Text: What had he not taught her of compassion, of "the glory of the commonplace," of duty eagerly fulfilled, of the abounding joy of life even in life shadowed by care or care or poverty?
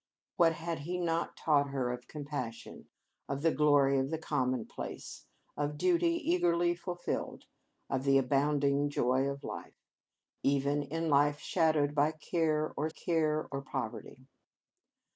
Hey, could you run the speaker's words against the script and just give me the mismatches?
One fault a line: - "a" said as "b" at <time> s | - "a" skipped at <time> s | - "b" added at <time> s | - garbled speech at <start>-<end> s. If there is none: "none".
none